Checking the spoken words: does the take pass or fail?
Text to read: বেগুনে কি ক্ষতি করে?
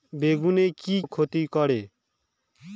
pass